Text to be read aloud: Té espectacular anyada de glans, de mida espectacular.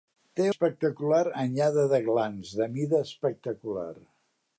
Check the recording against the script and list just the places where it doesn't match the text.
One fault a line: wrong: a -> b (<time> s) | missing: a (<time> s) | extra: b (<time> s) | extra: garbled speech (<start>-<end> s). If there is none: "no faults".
no faults